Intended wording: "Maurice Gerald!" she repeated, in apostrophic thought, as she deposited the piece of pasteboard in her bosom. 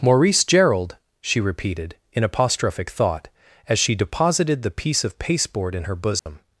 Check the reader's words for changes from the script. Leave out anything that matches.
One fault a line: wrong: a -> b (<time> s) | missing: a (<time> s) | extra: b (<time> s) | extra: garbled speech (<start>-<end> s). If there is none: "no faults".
no faults